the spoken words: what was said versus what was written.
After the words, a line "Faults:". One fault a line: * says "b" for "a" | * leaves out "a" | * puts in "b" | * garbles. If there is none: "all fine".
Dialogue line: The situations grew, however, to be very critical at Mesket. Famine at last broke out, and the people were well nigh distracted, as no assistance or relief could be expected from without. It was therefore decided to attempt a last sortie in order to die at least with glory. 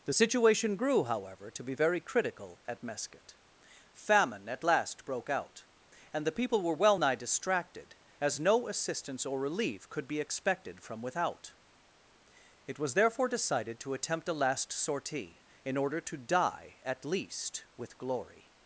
The situation grew, however, to be very critical at Mesket. Famine at last broke out, and the people were well nigh distracted, as no assistance or relief could be expected from without. It was therefore decided to attempt a last sortie in order to die at least with glory.
Faults:
* says "situation" for "situations"